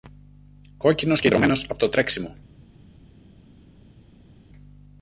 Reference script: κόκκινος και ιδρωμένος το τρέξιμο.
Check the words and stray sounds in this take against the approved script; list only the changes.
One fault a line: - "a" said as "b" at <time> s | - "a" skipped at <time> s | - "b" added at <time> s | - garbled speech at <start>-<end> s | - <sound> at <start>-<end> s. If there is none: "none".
- "από" added at 1.7 s